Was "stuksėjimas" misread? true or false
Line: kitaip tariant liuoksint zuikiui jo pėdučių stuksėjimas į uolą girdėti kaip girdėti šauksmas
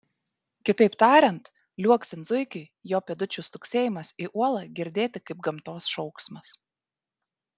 false